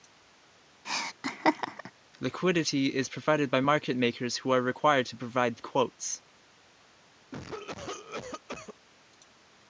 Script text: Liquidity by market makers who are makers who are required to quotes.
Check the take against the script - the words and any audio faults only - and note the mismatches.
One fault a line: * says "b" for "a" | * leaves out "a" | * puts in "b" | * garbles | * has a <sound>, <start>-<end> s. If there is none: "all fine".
* has a laugh, 0.8-1.9 s
* puts in "is provided"
* leaves out "makers who are"
* puts in "provide"
* has a cough, 7.3-8.7 s